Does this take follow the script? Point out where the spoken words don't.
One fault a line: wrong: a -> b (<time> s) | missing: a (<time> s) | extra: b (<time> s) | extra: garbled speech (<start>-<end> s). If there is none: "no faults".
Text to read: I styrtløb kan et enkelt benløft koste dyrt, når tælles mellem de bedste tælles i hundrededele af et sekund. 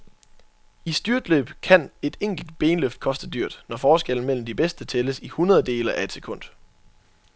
wrong: tælles -> forskellen (3.8 s)